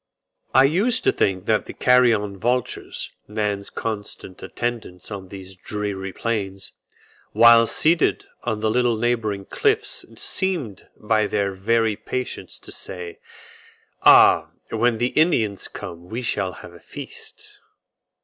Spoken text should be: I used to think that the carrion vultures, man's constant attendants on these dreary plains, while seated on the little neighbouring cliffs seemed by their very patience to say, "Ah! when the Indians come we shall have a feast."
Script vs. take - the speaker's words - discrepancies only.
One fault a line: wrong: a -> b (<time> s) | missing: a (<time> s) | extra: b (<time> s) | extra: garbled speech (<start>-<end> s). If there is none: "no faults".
no faults